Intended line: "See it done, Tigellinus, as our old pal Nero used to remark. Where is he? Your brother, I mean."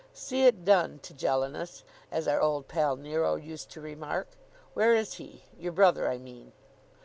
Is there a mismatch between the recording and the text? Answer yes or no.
no